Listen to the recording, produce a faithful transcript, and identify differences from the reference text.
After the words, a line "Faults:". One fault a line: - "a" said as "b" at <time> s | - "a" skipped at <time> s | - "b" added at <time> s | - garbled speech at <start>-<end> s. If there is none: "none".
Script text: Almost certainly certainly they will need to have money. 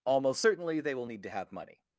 Almost certainly they will need to have money.
Faults:
- "certainly" skipped at 0.8 s